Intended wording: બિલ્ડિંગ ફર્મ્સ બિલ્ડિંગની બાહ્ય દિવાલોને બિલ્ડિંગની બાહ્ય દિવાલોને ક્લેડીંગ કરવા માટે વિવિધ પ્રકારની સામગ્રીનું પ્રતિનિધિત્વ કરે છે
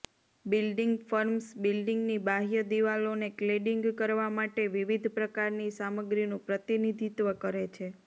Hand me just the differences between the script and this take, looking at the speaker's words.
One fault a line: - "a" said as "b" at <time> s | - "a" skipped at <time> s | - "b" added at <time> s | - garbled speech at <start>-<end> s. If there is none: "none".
- "બિલ્ડિંગની બાહ્ય દિવાલોને" skipped at 3.3 s